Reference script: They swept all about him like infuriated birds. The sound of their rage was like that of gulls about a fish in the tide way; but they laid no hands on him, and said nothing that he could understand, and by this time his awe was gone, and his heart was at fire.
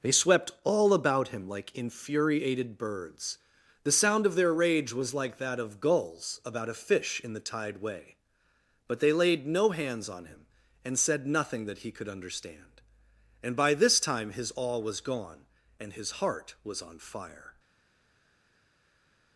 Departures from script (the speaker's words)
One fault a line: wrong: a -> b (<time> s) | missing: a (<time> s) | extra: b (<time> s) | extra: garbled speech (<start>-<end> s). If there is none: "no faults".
wrong: at -> on (16.8 s)